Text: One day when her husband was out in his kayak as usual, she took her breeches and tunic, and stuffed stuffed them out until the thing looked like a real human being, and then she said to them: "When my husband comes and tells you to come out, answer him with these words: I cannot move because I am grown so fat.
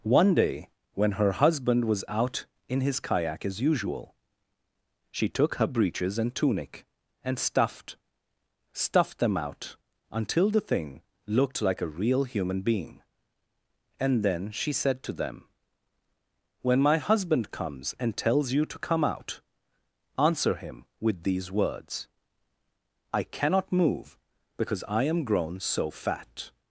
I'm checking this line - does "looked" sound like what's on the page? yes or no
yes